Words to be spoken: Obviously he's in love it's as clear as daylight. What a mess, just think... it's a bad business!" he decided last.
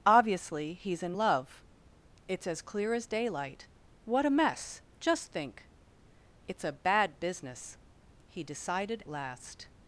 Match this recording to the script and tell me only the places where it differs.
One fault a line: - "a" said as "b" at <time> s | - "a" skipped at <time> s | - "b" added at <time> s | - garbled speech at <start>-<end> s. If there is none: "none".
none